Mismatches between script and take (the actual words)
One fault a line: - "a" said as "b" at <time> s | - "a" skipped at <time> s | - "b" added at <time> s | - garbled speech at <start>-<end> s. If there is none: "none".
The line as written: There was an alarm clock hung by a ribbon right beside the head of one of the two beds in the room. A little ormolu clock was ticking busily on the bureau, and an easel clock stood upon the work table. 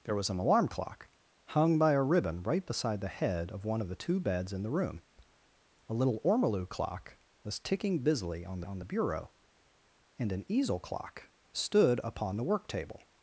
- "on" added at 8.6 s